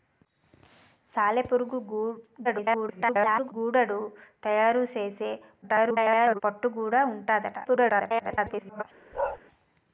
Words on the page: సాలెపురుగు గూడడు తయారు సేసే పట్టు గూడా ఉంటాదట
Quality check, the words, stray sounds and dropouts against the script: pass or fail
fail